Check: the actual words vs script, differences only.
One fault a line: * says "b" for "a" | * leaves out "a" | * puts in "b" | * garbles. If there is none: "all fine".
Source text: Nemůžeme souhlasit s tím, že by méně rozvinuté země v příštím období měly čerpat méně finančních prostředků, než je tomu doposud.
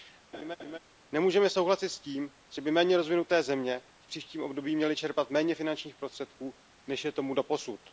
all fine